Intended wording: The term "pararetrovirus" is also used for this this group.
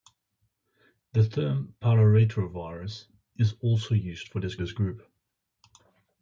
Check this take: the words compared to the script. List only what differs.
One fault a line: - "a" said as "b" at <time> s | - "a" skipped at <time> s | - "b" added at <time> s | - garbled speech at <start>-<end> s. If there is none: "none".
none